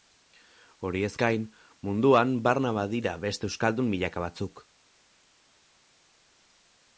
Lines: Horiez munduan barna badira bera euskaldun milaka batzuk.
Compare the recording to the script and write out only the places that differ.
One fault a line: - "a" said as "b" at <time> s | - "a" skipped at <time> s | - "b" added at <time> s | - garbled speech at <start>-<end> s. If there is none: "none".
- "gain" added at 1.2 s
- "bera" said as "beste" at 3.2 s